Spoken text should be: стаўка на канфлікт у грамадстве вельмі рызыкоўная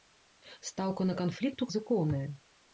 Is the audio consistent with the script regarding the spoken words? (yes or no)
no